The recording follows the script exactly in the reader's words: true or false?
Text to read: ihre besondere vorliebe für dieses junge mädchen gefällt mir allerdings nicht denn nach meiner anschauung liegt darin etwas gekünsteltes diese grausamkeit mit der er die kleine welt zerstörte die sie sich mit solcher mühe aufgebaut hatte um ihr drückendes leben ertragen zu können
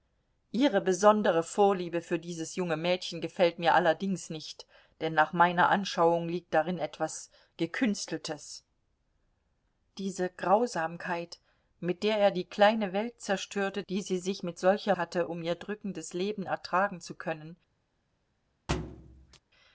false